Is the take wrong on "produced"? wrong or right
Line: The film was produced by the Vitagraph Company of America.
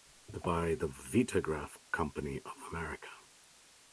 wrong